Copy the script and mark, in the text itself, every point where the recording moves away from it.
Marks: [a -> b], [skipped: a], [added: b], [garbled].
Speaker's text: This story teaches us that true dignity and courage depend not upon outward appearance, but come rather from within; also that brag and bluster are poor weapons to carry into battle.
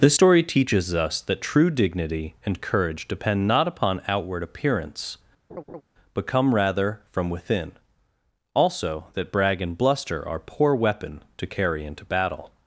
This story teaches us that true dignity and courage depend not upon outward appearance, but come rather from within; also that brag and bluster are poor [weapons -> weapon] to carry into battle.